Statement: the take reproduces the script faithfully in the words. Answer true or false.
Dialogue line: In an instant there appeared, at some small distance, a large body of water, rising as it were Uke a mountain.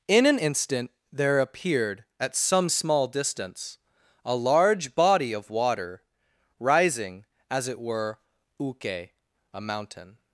true